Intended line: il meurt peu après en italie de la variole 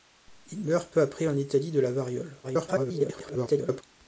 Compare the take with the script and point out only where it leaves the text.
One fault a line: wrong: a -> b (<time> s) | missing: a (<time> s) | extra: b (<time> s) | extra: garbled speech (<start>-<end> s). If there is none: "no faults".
extra: garbled speech (2.4-3.8 s)